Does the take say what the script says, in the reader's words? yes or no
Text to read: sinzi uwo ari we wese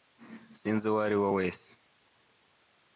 yes